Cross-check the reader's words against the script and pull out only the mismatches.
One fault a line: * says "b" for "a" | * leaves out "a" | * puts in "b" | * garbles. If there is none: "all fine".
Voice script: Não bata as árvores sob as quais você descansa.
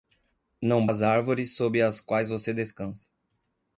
* leaves out "bata"